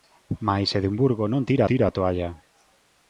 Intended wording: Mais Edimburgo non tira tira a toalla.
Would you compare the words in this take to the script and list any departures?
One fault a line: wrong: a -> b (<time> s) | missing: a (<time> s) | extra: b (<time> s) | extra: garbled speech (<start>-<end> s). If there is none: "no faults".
no faults